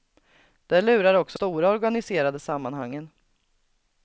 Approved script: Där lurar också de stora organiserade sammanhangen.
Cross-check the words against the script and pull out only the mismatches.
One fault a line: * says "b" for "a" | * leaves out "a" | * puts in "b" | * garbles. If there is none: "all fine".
* leaves out "de"